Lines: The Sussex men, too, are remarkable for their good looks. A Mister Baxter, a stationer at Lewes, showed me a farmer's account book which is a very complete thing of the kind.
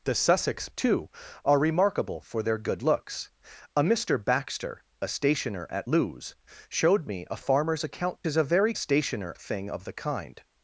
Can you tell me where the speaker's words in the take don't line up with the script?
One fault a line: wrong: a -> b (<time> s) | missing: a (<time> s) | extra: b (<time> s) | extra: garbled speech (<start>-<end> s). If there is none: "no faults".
missing: men (0.7 s)
missing: book which (8.2 s)
wrong: complete -> stationer (8.7 s)